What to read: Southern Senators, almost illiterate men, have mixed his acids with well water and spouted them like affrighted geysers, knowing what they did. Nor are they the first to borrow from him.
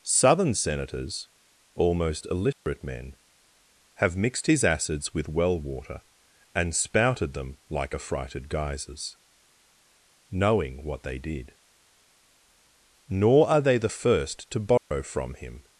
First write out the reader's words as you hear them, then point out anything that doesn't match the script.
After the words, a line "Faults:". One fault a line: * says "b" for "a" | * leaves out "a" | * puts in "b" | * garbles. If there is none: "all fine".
Southern Senators, almost illiterate men, have mixed his acids with well water and spouted them like affrighted geysers, knowing what they did. Nor are they the first to borrow from him.
Faults:
all fine